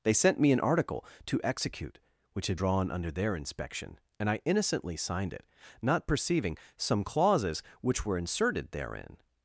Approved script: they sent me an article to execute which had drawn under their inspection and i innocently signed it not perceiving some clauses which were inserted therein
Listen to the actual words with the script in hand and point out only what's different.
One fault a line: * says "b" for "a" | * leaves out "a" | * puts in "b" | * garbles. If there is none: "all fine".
all fine